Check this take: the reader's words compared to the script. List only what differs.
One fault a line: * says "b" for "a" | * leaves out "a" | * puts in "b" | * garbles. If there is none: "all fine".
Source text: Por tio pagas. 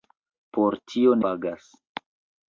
all fine